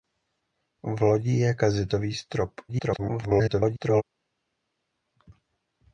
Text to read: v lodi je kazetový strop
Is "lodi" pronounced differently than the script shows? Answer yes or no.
no